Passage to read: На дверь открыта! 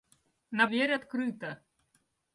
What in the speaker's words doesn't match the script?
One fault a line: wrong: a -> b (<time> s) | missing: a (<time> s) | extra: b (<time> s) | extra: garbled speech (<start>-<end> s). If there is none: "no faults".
no faults